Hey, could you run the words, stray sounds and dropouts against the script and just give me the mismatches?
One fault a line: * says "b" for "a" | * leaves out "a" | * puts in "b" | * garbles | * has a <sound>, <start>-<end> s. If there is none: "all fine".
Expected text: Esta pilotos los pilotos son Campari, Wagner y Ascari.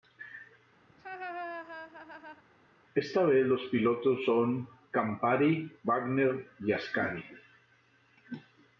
* has a laugh, 0.9-2.4 s
* says "vez" for "pilotos"